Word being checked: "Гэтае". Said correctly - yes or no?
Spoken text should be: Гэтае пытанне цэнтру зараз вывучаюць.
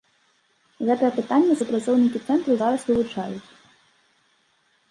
yes